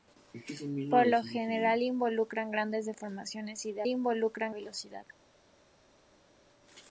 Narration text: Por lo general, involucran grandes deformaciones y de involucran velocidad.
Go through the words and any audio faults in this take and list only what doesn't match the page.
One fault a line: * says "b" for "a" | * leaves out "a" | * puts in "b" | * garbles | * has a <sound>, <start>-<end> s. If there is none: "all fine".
all fine